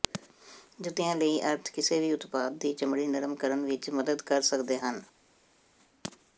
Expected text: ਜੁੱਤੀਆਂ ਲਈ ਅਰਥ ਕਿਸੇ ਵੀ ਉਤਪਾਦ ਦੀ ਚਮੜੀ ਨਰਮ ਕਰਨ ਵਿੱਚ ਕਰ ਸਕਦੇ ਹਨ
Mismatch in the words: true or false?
true